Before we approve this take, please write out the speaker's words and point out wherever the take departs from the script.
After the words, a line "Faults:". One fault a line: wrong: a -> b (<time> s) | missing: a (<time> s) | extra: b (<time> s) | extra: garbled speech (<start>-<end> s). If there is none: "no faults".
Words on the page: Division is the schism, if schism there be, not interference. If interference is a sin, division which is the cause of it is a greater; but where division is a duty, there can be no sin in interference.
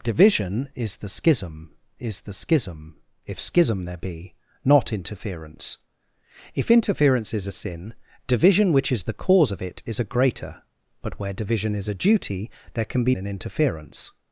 Division is the schism is the schism, if schism there be, not interference. If interference is a sin, division which is the cause of it is a greater; but where division is a duty, there can be in interference.
Faults:
extra: is the schism (2.0 s)
missing: no sin (13.2 s)